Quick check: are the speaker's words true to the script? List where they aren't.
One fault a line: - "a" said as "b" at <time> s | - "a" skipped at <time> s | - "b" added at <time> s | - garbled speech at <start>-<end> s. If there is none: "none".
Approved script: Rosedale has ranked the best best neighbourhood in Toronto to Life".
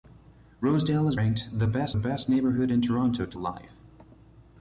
none